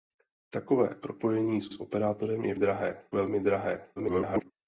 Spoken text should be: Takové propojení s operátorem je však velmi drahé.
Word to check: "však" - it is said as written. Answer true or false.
false